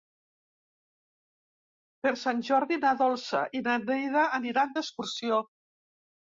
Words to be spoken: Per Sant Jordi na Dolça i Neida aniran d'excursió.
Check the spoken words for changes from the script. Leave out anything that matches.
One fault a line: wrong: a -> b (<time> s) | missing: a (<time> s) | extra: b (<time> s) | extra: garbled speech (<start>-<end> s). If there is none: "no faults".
extra: na (3.7 s)